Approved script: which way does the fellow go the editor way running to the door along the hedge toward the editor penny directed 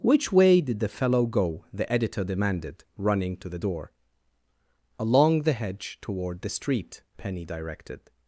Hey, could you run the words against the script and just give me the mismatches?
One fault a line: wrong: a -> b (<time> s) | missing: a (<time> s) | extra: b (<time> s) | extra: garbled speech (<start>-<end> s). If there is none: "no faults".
wrong: does -> did (0.6 s)
wrong: way -> demanded (2.2 s)
wrong: editor -> street (6.5 s)